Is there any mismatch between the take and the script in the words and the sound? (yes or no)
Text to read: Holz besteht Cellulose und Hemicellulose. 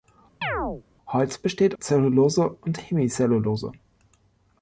yes